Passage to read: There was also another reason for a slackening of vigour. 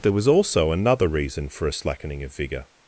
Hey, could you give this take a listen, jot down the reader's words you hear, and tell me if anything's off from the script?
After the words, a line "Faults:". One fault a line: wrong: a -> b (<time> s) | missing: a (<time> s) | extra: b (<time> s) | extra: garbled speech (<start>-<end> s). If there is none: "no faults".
There was also another reason for a slackening of vigour.
Faults:
no faults